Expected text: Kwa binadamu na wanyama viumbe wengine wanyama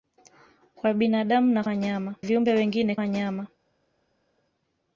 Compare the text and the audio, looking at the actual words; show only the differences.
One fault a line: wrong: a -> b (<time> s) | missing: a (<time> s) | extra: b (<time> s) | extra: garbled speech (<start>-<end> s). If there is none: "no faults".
no faults